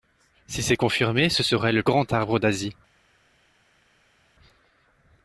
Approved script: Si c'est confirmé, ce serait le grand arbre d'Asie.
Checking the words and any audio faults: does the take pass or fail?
pass